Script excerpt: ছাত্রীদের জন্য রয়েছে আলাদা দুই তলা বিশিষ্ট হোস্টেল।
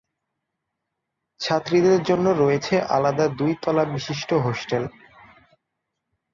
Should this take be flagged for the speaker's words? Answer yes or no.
no